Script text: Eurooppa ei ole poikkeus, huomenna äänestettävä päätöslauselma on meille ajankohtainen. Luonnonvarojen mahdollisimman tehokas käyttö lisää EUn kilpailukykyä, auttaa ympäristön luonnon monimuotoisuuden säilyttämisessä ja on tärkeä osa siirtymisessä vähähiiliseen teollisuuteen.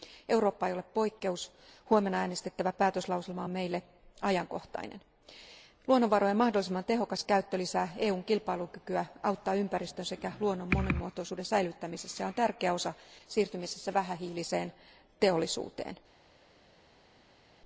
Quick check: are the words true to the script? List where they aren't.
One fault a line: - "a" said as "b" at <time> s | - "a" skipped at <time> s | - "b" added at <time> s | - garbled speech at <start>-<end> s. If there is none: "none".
- "sekä" added at 10.1 s